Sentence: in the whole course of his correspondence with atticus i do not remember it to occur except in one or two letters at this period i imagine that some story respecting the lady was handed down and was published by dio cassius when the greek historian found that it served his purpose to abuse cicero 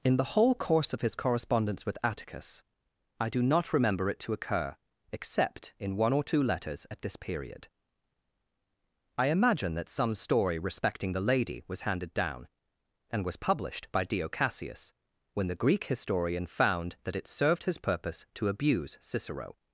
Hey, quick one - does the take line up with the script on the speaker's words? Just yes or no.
yes